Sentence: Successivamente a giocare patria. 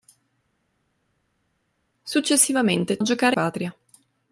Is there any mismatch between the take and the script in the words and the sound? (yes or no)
no